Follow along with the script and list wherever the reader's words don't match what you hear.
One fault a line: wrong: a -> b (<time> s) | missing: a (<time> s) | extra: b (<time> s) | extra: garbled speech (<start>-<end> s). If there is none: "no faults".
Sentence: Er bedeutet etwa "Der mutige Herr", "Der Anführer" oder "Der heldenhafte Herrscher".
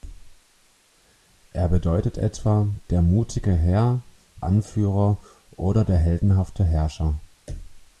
missing: Der (4.0 s)